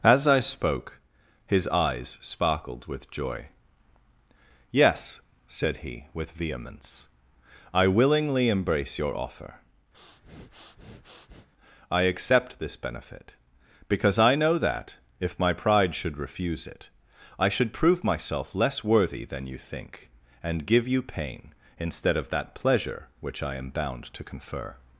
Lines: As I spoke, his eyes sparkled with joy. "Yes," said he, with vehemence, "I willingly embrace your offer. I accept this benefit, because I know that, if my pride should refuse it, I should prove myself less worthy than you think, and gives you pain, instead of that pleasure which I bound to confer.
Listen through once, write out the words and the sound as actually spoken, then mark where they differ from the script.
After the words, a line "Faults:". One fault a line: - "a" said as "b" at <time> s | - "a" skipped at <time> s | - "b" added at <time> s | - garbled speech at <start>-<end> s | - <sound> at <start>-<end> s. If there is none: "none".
As I spoke, his eyes sparkled with joy. "Yes," said he, with vehemence, "I willingly embrace your offer. I accept this benefit, because I know that, if my pride should refuse it, I should prove myself less worthy than you think, and give you pain, instead of that pleasure which I am bound to confer.
Faults:
- breath at 9.9-11.5 s
- "gives" said as "give" at 20.6 s
- "am" added at 23.5 s